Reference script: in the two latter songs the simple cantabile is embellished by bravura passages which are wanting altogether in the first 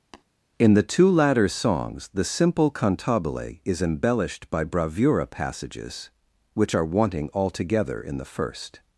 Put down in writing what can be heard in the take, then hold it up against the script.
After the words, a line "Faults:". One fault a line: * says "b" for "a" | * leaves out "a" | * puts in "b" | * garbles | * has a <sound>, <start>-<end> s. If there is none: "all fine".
in the two latter songs the simple cantabile is embellished by bravura passages which are wanting altogether in the first
Faults:
* has a tap, 0.1-0.2 s